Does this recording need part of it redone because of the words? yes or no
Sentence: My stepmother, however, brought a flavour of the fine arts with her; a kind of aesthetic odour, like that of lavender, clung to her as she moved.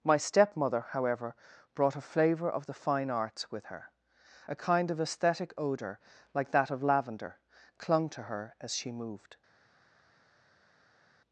no